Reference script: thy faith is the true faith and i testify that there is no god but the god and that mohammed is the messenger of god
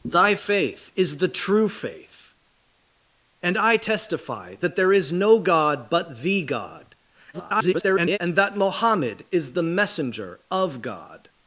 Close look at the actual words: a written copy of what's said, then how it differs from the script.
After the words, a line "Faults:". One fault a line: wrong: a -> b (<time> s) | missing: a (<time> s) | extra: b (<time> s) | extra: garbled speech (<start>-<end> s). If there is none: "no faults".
thy faith is the true faith and i testify that there is no god but the god [garbled] and that mohammed is the messenger of god
Faults:
extra: garbled speech (7.3-8.2 s)